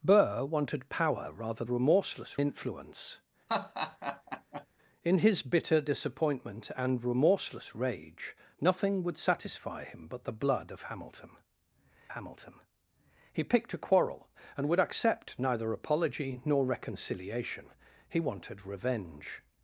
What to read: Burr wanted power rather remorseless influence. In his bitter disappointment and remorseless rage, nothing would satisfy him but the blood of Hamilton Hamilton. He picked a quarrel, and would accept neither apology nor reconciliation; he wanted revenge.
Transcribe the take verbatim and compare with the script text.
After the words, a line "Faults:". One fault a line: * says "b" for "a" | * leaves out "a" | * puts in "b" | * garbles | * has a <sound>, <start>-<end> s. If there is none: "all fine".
Burr wanted power rather remorseless influence. In his bitter disappointment and remorseless rage, nothing would satisfy him but the blood of Hamilton Hamilton. He picked a quarrel, and would accept neither apology nor reconciliation; he wanted revenge.
Faults:
* has a laugh, 3.5-4.7 s